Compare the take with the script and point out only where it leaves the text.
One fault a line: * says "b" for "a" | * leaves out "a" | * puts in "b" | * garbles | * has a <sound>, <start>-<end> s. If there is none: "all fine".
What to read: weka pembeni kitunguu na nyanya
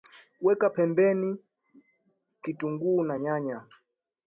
all fine